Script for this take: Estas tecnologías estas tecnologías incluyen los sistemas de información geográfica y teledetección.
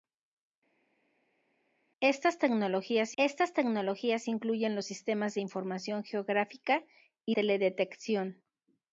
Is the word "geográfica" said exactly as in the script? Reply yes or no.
yes